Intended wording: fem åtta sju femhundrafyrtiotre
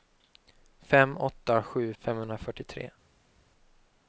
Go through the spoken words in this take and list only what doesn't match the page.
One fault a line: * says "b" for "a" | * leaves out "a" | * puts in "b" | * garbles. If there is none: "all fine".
all fine